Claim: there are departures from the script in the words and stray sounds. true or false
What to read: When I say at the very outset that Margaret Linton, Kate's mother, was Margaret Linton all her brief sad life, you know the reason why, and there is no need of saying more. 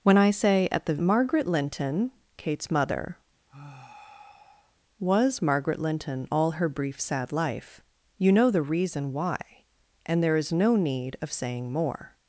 true